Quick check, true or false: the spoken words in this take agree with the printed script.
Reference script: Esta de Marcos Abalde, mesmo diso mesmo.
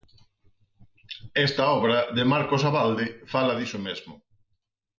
false